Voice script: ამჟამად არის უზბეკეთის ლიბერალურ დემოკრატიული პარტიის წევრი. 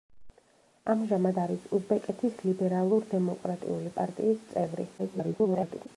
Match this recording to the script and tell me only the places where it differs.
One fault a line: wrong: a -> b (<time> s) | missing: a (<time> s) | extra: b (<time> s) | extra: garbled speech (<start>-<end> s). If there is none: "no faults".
extra: garbled speech (5.0-5.9 s)